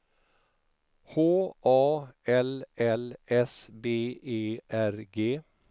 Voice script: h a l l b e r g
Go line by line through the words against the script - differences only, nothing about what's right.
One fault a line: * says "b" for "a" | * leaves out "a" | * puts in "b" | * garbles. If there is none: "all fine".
* puts in "s"